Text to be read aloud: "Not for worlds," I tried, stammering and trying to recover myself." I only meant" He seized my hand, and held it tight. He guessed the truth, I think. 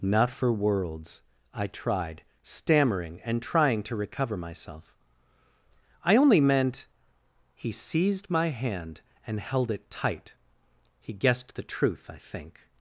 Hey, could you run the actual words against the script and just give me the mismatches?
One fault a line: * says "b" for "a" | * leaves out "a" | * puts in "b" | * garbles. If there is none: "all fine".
all fine